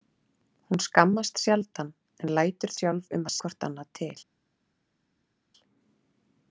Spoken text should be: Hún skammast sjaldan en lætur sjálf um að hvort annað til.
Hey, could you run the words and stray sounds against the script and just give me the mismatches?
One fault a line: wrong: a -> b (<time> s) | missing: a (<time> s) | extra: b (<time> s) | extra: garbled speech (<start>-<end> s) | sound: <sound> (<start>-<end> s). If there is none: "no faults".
no faults